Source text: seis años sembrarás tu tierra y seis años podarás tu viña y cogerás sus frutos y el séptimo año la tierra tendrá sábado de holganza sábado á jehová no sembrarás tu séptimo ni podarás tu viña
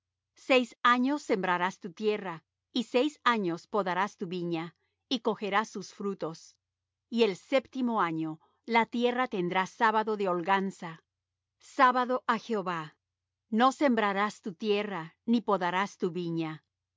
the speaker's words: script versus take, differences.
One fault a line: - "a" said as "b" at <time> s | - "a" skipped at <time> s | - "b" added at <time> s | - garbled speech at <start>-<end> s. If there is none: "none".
- "séptimo" said as "tierra" at 14.5 s